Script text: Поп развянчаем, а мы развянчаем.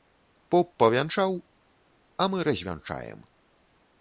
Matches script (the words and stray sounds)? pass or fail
fail